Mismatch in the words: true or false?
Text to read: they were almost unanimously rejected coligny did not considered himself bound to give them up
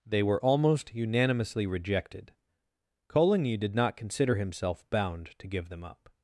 true